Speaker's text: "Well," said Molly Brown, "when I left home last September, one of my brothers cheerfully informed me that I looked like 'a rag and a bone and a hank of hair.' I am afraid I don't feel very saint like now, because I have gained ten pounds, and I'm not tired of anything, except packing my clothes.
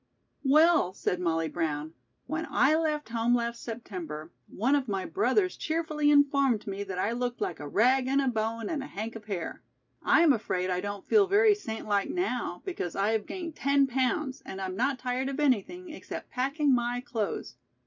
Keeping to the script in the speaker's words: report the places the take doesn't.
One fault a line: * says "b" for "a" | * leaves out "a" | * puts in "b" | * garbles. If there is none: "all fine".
all fine